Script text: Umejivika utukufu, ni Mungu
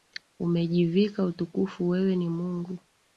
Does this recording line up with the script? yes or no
no